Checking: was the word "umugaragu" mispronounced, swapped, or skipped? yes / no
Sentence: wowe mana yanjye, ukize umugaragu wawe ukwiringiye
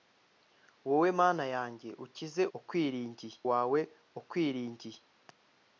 yes